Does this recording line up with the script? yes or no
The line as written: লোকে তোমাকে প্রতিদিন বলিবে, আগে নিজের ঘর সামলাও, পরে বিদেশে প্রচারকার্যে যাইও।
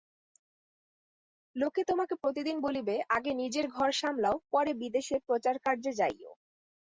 yes